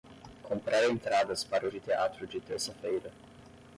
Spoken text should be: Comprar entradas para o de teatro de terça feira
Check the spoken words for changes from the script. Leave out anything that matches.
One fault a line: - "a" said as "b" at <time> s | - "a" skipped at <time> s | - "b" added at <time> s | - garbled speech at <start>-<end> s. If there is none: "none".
none